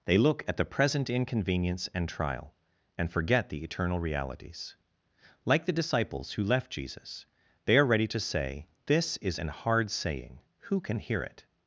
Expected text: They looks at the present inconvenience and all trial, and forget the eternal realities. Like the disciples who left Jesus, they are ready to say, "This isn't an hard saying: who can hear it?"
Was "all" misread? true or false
true